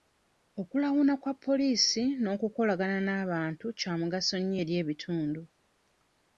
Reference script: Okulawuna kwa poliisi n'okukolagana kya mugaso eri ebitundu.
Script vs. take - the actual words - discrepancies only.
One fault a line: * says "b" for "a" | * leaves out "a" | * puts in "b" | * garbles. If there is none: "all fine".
* puts in "n'abantu"
* puts in "nnyo"